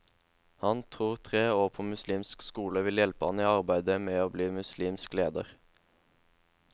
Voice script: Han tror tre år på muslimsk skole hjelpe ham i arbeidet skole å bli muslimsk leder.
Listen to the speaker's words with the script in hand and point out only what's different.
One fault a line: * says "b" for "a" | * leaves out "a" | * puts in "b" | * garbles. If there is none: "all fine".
* puts in "vil"
* says "med" for "skole"